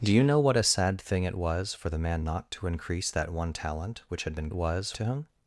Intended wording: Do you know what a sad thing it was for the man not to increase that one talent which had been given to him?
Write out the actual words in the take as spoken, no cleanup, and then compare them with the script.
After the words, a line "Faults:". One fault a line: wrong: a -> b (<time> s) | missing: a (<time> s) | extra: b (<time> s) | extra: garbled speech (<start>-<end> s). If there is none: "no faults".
Do you know what a sad thing it was for the man not to increase that one talent which had been was to him?
Faults:
wrong: given -> was (4.5 s)